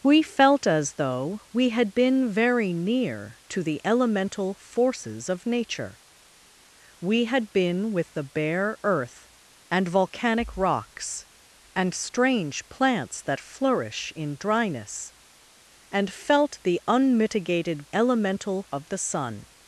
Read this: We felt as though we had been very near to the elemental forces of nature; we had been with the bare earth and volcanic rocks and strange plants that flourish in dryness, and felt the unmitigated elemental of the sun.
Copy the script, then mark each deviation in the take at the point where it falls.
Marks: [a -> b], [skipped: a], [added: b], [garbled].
We felt as though we had been very near to the elemental forces of nature; we had been with the bare earth and volcanic rocks and strange plants that flourish in dryness, and felt the unmitigated elemental of the sun.